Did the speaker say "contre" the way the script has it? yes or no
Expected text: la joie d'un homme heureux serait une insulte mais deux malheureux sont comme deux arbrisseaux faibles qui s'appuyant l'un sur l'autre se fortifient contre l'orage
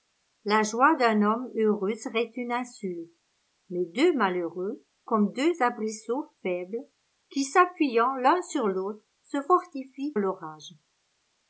no